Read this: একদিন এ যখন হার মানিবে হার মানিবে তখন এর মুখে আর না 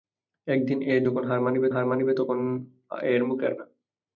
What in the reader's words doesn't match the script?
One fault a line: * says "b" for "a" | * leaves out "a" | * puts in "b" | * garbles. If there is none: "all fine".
all fine